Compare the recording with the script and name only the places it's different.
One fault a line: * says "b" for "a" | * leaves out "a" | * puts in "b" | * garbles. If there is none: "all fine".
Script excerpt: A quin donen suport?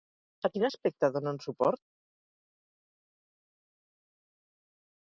* puts in "aspecte"